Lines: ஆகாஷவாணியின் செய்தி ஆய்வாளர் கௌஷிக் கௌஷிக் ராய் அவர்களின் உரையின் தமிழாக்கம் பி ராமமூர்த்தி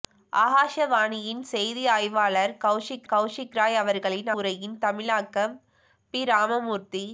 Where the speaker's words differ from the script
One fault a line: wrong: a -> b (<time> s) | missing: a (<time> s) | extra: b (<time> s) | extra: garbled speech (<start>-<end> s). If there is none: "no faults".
no faults